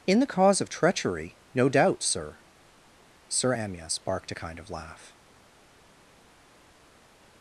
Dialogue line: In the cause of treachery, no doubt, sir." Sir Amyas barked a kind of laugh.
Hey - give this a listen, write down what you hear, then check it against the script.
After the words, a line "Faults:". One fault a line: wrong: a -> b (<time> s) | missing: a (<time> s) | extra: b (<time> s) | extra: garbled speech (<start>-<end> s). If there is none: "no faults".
In the cause of treachery, no doubt, sir." Sir Amyas barked a kind of laugh.
Faults:
no faults